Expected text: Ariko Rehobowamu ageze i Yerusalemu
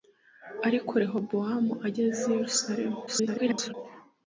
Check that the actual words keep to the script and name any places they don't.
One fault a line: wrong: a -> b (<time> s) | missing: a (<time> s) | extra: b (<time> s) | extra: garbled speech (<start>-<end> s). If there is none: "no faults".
extra: garbled speech (3.1-3.7 s)